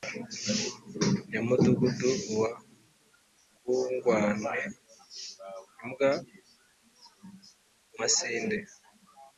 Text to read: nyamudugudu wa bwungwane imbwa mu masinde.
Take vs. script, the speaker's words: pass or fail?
pass